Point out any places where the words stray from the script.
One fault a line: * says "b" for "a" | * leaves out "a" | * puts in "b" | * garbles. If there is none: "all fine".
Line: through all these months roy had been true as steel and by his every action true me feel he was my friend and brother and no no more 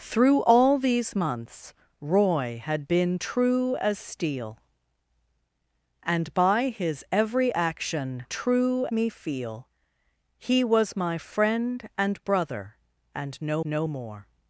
all fine